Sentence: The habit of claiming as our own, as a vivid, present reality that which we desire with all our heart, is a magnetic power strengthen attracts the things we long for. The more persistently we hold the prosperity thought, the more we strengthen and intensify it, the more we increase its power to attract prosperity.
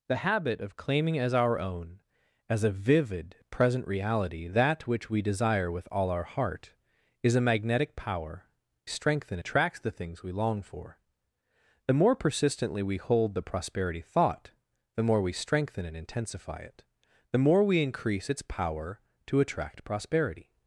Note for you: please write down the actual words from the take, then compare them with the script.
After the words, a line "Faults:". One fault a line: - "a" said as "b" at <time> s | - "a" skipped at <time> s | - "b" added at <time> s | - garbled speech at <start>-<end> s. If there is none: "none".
The habit of claiming as our own, as a vivid, present reality that which we desire with all our heart, is a magnetic power strengthen attracts the things we long for. The more persistently we hold the prosperity thought, the more we strengthen and intensify it, the more we increase its power to attract prosperity.
Faults:
none